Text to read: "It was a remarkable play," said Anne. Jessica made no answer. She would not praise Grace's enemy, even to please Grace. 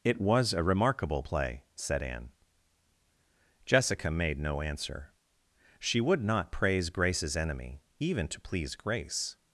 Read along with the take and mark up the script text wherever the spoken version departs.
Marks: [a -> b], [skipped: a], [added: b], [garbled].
"It was a remarkable play," said Anne. Jessica made no answer. She would not praise Grace's enemy, even to please Grace.